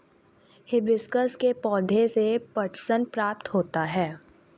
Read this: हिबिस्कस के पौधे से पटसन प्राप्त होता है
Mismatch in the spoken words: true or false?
false